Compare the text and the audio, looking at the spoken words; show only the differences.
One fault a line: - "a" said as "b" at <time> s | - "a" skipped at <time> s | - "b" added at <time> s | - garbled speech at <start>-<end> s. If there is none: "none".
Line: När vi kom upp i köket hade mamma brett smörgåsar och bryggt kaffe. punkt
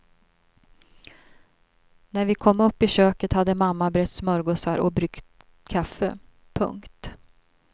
none